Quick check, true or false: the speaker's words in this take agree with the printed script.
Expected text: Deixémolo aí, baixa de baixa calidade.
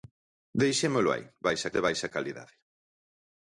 true